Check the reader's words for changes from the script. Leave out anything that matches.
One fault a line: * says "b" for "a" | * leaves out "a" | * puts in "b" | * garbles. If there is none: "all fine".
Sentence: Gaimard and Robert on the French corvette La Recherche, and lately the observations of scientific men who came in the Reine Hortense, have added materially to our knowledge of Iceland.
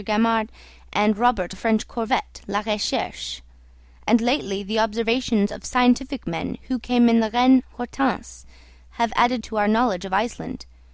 * leaves out "on"
* leaves out "materially"